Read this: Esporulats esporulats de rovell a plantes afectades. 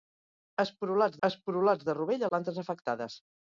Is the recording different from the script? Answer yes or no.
no